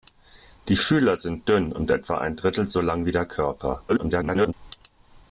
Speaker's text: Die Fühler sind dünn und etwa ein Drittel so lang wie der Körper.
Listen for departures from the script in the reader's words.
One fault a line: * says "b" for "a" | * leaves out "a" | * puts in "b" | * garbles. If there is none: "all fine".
* garbles